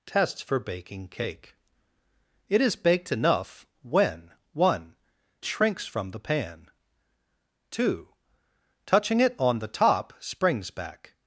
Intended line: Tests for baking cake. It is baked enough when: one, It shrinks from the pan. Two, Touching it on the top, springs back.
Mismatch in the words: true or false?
true